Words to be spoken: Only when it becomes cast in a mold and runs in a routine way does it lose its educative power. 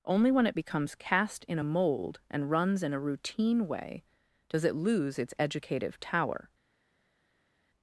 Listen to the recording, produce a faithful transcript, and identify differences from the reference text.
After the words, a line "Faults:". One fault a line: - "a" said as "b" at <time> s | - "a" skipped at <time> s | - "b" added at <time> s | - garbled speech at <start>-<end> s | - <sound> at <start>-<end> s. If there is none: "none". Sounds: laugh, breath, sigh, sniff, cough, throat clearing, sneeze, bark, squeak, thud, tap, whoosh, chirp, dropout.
Only when it becomes cast in a mold and runs in a routine way does it lose its educative tower.
Faults:
- "power" said as "tower" at 6.0 s